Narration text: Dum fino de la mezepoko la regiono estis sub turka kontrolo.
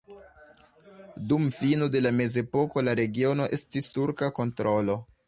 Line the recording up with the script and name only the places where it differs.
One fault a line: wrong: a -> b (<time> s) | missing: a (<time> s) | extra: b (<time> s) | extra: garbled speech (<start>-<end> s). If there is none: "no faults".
missing: sub (3.9 s)